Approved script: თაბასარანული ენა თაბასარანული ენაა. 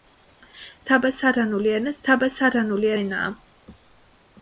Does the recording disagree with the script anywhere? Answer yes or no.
no